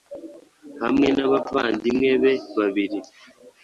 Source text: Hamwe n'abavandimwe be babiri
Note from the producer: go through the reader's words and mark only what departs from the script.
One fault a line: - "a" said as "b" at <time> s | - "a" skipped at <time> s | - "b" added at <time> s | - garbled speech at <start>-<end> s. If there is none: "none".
none